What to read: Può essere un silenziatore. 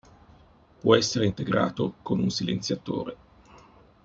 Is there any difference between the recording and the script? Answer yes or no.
yes